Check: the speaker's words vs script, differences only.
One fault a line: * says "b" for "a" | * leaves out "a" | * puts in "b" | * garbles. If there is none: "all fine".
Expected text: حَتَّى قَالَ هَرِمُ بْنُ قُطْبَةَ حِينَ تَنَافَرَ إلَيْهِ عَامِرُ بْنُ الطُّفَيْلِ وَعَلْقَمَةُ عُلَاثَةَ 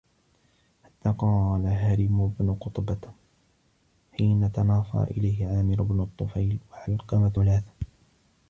all fine